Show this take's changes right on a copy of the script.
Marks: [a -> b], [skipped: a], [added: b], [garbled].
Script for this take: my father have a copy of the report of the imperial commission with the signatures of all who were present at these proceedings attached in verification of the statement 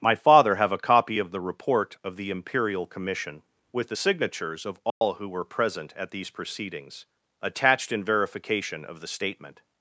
my father have a copy of the report of the imperial commission with the signatures of all who were present at these proceedings attached in verification of the statement